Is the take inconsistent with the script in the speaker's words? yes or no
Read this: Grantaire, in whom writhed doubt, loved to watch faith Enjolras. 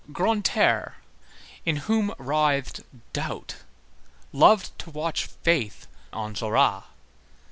no